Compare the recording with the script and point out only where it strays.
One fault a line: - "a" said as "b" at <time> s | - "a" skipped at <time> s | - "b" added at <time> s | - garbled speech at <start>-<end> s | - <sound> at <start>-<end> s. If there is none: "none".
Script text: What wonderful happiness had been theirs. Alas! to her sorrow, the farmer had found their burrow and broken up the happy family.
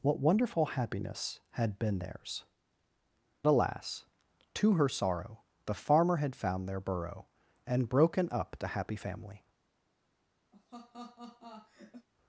- laugh at 10.5-12.1 s